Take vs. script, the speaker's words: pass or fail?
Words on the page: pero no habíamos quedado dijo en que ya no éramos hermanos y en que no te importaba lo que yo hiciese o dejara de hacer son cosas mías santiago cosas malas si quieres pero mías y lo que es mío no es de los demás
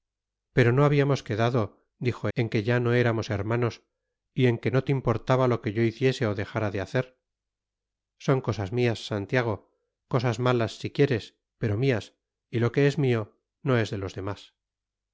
pass